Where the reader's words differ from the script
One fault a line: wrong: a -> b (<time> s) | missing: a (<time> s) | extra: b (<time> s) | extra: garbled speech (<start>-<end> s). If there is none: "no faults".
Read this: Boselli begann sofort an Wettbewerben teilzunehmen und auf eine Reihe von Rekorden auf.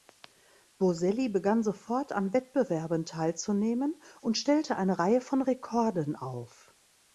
wrong: auf -> stellte (4.4 s)